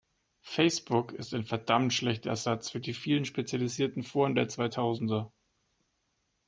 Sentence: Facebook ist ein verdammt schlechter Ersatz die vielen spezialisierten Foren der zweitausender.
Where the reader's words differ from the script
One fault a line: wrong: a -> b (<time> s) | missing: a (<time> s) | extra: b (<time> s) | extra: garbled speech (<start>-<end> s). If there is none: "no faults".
extra: für (2.7 s)